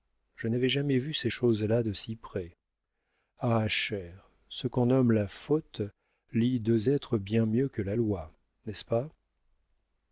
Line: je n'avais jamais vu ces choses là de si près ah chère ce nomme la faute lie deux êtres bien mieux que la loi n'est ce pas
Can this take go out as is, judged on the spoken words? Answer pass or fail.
fail